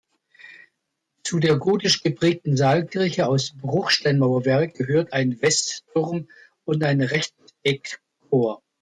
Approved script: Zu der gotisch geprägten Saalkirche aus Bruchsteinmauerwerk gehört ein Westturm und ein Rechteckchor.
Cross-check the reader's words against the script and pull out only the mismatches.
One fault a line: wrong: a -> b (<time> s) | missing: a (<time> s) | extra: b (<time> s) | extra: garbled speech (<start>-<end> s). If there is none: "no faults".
no faults